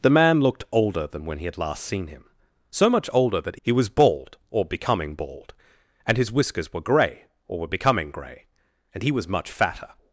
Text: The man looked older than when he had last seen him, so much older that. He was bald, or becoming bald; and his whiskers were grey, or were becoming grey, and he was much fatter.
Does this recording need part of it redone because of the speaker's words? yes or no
no